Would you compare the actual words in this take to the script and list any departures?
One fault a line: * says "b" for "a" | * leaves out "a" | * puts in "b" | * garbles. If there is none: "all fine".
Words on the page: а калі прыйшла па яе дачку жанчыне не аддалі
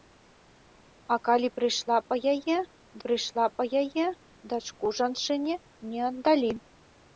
* puts in "прыйшла па яе"